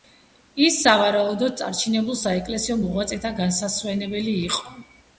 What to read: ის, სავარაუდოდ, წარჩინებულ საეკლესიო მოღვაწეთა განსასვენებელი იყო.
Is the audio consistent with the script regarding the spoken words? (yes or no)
yes